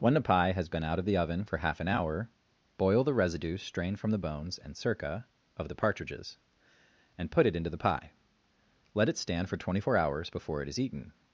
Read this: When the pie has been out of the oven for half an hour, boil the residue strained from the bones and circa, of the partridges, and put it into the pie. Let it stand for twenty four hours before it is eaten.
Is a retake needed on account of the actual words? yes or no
no